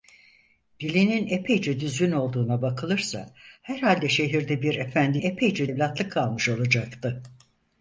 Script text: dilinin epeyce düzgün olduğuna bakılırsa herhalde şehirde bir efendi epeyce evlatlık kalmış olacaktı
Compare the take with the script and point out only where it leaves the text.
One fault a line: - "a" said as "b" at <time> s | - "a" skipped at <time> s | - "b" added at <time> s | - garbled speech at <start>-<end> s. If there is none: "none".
none